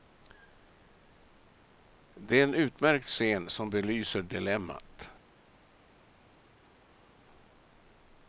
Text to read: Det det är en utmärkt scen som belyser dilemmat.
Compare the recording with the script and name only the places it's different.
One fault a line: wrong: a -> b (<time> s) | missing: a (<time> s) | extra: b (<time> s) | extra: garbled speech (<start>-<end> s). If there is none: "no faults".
missing: det (2.4 s)